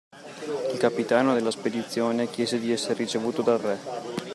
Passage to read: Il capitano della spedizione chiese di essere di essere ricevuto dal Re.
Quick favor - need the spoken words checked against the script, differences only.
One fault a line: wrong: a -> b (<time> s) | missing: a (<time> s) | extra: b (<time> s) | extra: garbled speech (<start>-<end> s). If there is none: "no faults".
missing: di essere (2.9 s)